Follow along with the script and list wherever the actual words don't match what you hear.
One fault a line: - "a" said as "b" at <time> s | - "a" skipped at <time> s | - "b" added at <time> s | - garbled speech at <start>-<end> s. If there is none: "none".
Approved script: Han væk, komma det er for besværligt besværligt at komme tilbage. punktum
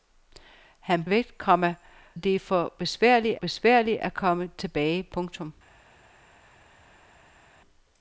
none